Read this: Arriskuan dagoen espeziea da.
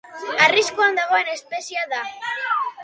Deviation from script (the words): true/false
false